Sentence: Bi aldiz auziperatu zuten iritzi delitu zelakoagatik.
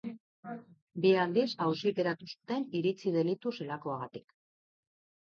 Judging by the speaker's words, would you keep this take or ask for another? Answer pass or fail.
pass